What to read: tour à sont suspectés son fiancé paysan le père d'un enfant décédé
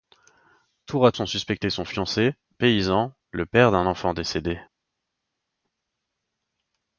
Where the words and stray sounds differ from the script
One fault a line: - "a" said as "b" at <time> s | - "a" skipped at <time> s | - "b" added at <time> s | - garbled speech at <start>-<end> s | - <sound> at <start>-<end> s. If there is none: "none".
none